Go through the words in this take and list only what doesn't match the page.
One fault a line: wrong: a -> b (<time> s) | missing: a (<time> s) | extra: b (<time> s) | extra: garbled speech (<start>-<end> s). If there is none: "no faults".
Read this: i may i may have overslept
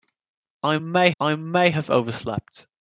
no faults